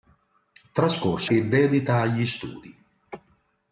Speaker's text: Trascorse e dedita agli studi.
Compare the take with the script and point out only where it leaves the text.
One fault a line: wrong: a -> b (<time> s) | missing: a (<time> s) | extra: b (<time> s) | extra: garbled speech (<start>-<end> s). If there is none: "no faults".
no faults